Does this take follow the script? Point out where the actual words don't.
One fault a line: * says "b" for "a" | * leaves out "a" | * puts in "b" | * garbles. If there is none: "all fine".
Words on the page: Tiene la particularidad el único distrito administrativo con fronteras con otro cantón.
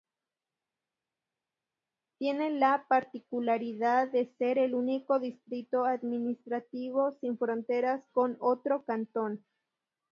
* puts in "de ser"
* says "sin" for "con"